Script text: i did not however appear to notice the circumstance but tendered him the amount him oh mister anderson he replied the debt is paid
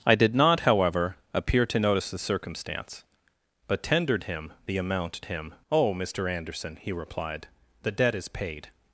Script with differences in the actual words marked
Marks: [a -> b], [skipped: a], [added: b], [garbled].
i did not however appear to notice the circumstance but tendered him the amount him oh mister anderson he replied the debt is paid